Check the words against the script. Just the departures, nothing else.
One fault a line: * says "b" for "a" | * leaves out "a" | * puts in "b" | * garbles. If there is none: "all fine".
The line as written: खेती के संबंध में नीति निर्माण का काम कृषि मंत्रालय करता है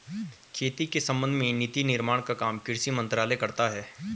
all fine